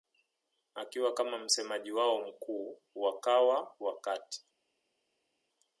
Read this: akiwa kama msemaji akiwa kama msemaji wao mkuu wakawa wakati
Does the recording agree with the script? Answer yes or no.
no